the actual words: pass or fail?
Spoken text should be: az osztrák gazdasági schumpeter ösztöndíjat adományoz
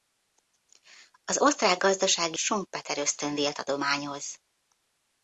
pass